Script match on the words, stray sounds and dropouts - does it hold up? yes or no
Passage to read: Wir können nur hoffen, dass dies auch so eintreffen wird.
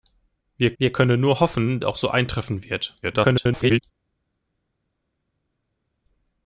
no